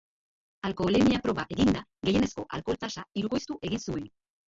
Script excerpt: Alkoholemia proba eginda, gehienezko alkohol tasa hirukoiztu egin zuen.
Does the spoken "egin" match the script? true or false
true